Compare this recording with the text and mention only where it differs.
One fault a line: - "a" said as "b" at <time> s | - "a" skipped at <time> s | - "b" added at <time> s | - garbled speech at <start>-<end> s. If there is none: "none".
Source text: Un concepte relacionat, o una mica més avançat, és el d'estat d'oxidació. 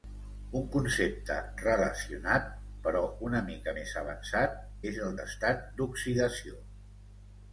- "o" said as "però" at 2.9 s